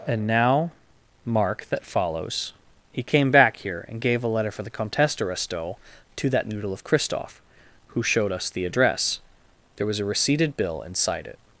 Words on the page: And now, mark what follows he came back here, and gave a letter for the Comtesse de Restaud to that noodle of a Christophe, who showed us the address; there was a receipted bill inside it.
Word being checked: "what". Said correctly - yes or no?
no